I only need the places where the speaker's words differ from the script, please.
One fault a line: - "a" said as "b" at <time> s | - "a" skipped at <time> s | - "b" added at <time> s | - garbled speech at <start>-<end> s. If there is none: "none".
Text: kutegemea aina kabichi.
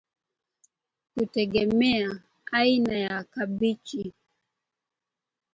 - "ya" added at 3.0 s